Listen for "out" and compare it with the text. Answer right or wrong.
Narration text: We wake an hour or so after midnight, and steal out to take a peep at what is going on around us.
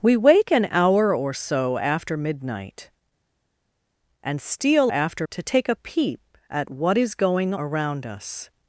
wrong